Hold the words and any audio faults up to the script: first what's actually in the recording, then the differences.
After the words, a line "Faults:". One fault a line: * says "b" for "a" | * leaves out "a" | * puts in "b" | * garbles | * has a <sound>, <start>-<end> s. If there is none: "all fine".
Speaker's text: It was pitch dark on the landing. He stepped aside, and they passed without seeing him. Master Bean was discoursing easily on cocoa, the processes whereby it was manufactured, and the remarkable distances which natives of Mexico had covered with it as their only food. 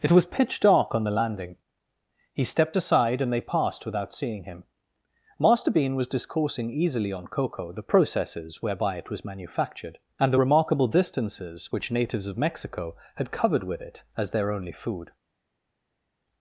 It was pitch dark on the landing. He stepped aside, and they passed without seeing him. Master Bean was discoursing easily on cocoa, the processes whereby it was manufactured, and the remarkable distances which natives of Mexico had covered with it as their only food.
Faults:
all fine